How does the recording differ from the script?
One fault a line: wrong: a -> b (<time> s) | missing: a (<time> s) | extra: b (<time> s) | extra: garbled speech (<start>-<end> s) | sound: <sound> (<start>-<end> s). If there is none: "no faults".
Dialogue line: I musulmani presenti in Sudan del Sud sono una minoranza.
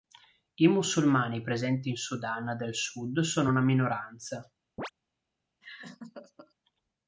sound: chirp (4.8-4.9 s)
sound: laugh (5.6-6.5 s)